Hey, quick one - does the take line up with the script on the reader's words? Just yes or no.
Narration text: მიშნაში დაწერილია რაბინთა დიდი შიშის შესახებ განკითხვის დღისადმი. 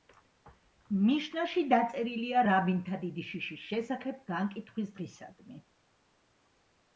yes